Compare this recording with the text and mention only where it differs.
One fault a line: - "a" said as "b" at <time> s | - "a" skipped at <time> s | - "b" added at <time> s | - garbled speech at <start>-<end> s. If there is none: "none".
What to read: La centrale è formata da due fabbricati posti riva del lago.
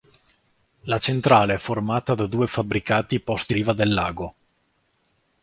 none